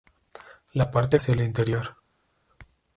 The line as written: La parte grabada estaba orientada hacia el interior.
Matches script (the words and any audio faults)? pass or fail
fail